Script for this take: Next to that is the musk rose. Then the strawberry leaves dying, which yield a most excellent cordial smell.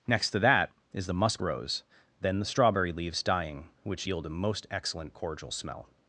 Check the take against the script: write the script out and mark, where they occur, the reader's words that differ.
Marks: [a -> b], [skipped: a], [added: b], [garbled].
Next to that is the musk rose. Then the strawberry leaves dying, which yield a most excellent cordial smell.